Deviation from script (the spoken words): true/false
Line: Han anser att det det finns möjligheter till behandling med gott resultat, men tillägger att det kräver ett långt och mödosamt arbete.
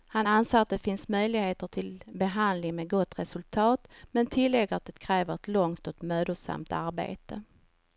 true